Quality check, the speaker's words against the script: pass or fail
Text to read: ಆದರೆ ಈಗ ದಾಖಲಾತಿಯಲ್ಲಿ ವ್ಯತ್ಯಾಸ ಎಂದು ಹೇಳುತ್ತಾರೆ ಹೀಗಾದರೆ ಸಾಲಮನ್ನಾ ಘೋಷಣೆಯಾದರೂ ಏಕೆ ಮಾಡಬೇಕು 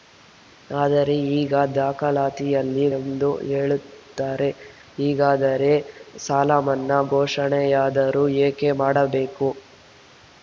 fail